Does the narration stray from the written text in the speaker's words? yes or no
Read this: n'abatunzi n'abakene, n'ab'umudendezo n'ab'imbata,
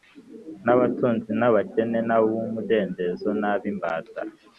no